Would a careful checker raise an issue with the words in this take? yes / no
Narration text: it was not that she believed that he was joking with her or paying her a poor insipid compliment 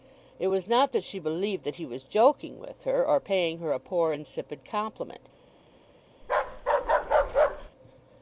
no